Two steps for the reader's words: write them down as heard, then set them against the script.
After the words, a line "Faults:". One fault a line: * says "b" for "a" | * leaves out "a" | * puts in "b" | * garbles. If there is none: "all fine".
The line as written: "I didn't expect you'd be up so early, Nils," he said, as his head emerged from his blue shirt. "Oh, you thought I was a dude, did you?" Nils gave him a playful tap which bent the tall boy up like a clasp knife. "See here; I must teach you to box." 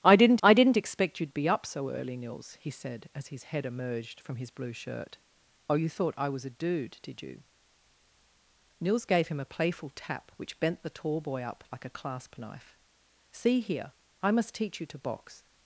"I didn't I didn't expect you'd be up so early, Nils," he said, as his head emerged from his blue shirt. "Oh, you thought I was a dude, did you?" Nils gave him a playful tap which bent the tall boy up like a clasp knife. "See here; I must teach you to box."
Faults:
* puts in "I didn't"